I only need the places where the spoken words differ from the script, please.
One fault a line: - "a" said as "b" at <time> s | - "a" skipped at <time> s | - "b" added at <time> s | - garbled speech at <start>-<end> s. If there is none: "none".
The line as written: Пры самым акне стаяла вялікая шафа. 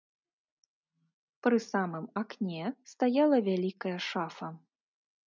none